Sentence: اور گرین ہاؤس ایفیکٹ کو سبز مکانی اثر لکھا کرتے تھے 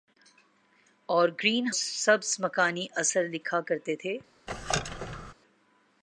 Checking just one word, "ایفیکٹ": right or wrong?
wrong